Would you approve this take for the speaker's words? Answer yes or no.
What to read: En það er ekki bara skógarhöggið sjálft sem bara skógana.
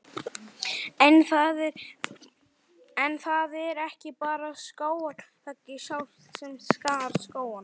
no